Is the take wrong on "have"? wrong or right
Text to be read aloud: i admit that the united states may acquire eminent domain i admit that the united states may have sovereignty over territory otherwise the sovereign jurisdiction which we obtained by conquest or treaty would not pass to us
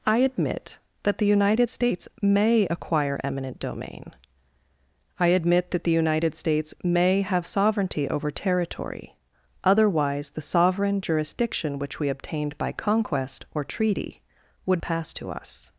right